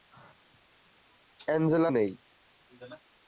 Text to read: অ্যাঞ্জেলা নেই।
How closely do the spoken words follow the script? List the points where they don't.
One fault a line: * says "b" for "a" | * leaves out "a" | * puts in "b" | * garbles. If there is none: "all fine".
all fine